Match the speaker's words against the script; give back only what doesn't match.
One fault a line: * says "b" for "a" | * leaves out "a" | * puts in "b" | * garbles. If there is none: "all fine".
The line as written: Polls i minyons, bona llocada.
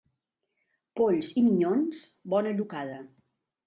all fine